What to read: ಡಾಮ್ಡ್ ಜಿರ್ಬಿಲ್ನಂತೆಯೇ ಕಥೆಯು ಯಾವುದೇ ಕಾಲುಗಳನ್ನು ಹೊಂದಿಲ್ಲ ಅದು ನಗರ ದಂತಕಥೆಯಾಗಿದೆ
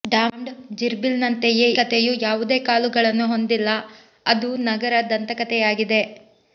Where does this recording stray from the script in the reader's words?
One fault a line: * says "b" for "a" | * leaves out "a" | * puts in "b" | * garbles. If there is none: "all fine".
all fine